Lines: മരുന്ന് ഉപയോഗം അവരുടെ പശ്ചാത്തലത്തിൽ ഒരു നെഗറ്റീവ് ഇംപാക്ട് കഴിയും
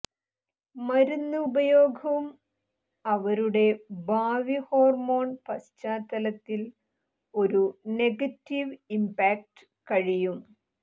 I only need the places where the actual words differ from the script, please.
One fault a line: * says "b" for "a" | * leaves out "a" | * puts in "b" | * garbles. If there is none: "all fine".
* puts in "ഭാവി ഹോർമോൺ"